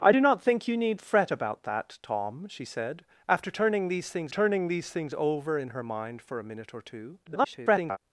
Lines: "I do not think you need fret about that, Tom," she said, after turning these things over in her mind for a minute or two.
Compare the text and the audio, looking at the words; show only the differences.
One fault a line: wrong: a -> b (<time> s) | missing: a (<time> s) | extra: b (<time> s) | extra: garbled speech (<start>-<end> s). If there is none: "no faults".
extra: turning these things (4.3 s)
extra: garbled speech (7.2-8.0 s)